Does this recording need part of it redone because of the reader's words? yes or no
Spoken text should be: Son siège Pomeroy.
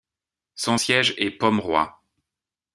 yes